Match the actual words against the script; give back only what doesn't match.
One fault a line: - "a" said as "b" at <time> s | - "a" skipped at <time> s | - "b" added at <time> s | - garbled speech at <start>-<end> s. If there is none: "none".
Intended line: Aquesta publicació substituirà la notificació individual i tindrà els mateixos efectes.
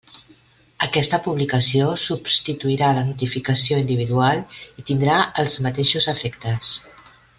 none